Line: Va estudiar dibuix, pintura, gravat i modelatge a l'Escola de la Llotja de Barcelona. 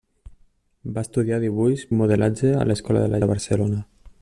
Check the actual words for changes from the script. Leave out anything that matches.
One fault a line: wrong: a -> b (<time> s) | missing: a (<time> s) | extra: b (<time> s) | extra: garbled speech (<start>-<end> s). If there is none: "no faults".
missing: pintura gravat (1.8 s)
missing: Llotja (3.2 s)